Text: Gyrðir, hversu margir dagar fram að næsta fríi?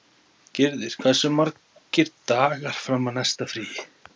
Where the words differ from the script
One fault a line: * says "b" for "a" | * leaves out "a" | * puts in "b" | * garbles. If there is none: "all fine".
all fine